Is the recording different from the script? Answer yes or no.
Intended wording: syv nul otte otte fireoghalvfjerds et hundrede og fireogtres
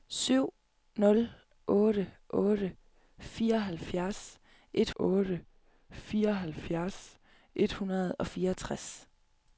yes